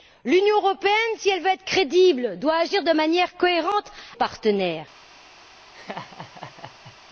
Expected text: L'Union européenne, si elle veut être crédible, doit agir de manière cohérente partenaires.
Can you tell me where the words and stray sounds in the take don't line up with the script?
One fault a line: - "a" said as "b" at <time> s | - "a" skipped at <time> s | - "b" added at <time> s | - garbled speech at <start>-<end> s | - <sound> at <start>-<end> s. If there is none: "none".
- laugh at 5.7-7.0 s